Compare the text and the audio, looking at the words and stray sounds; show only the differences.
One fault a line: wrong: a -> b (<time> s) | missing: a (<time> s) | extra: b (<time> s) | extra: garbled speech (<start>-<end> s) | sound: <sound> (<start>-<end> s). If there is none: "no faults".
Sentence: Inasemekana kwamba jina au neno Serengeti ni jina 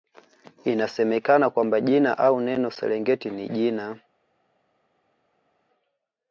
no faults